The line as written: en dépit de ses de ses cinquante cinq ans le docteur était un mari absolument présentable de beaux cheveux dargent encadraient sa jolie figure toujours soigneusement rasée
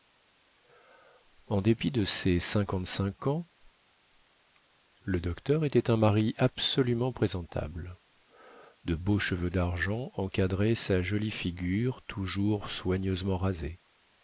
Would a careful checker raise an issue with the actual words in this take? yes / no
yes